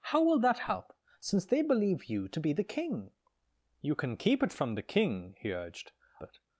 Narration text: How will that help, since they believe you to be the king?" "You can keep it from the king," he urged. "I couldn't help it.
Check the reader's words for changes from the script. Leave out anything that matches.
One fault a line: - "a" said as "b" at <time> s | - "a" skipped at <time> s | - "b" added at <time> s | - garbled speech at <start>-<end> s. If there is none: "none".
- "I couldn't help" skipped at 5.9 s